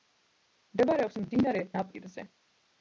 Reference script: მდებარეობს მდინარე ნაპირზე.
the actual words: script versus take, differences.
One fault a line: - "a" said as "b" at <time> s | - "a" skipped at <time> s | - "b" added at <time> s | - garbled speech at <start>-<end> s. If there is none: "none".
none